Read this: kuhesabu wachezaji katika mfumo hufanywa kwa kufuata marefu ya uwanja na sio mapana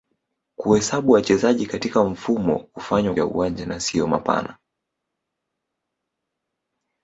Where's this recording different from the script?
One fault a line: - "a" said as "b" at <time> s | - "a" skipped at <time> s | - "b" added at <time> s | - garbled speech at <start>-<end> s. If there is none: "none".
- "kwa kufuata marefu" skipped at 3.1 s